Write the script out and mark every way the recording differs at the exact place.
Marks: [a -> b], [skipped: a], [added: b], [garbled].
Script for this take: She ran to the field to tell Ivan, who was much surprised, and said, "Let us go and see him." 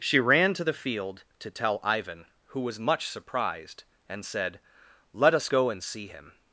She ran to the field to tell Ivan, who was much surprised, and said, "Let us go and see him."